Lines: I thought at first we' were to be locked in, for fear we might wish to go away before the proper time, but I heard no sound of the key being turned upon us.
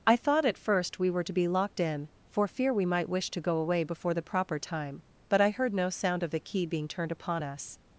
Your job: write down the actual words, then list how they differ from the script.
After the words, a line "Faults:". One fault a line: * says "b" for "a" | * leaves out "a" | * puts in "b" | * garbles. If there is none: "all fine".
I thought at first we' were to be locked in, for fear we might wish to go away before the proper time, but I heard no sound of the key being turned upon us.
Faults:
all fine